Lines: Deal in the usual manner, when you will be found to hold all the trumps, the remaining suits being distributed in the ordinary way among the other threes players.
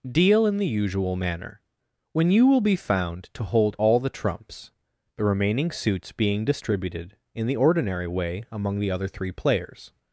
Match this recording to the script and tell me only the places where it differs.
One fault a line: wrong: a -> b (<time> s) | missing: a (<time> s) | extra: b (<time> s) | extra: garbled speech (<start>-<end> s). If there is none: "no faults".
wrong: threes -> three (9.1 s)